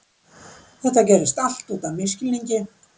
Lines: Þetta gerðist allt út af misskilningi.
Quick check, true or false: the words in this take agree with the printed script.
true